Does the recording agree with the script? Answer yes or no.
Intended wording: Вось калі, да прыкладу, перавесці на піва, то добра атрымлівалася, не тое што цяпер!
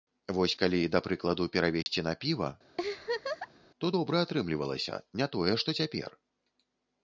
yes